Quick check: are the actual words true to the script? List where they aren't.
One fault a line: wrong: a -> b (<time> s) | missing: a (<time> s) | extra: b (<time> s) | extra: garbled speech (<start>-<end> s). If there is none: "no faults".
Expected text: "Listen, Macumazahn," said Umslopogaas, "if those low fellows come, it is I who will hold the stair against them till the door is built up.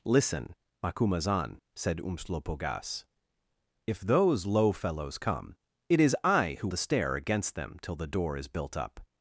missing: will hold (6.7 s)